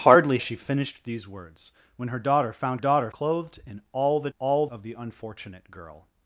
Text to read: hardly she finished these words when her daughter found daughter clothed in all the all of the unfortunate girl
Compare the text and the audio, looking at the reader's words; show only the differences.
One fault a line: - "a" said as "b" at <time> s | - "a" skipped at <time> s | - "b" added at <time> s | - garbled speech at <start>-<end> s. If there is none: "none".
none